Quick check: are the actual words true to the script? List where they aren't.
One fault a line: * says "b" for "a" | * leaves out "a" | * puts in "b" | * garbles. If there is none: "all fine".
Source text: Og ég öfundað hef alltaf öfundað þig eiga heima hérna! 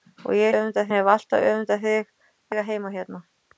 all fine